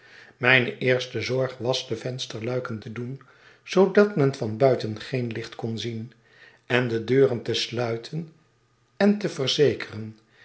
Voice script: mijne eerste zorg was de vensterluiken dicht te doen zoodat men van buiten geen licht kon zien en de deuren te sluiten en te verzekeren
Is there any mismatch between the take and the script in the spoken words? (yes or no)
yes